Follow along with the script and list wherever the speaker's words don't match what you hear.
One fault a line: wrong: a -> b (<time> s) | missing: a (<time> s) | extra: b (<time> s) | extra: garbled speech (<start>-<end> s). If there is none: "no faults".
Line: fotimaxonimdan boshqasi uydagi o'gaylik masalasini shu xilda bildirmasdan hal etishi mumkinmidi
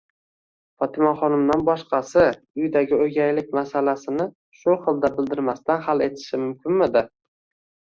no faults